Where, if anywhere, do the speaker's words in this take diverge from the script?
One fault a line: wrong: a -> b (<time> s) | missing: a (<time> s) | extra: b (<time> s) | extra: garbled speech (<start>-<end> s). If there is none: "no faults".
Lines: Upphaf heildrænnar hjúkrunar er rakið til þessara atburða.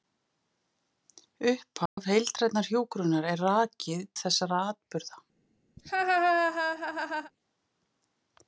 missing: til (4.0 s)